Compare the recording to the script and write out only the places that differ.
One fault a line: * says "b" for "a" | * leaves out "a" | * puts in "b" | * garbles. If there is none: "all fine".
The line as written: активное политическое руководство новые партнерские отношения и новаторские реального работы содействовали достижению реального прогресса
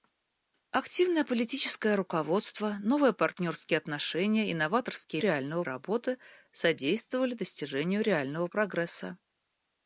all fine